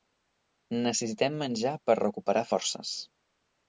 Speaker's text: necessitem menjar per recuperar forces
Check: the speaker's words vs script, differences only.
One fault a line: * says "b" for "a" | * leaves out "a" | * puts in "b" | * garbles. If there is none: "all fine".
all fine